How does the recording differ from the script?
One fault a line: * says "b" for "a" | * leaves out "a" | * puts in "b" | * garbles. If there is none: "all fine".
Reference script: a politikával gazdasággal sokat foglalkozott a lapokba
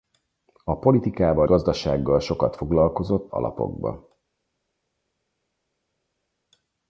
all fine